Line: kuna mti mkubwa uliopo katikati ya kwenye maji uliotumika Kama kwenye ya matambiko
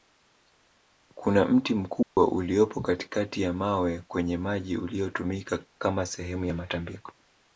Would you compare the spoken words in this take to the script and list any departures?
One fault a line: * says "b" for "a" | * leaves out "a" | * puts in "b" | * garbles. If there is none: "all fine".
* puts in "mawe"
* says "sehemu" for "kwenye"